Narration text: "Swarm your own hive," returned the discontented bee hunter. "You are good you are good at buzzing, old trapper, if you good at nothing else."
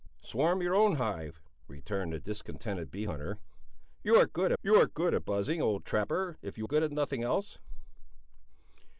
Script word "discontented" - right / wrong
right